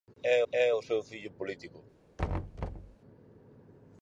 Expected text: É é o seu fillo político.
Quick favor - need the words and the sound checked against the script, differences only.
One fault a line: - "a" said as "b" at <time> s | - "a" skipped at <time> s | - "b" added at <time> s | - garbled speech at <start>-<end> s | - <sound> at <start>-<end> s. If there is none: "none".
- thud at 2.2-3.0 s